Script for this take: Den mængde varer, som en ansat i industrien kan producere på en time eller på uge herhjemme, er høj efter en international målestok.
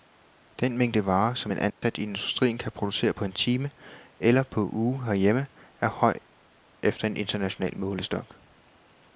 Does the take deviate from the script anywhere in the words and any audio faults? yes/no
yes